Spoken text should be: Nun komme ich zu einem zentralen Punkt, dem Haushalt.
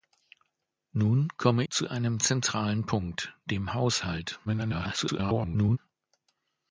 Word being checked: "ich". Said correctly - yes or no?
no